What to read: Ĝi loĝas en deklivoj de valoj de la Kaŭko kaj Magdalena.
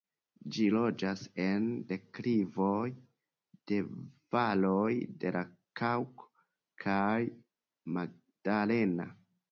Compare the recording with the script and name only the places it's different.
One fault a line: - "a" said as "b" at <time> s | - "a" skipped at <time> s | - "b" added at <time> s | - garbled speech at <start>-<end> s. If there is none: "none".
none